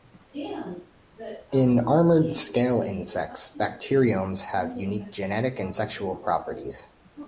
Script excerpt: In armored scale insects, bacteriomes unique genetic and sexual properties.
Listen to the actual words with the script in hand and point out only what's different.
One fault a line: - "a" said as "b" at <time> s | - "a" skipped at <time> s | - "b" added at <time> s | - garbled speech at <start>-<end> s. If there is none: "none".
- "have" added at 4.5 s